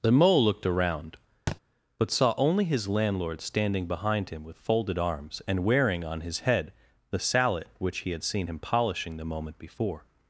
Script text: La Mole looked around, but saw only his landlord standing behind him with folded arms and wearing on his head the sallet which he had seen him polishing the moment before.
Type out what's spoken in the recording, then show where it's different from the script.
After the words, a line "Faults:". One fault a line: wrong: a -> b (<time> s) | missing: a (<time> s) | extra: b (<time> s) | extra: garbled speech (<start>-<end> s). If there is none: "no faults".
The Mole looked around, but saw only his landlord standing behind him with folded arms and wearing on his head the sallet which he had seen him polishing the moment before.
Faults:
wrong: La -> The (0.0 s)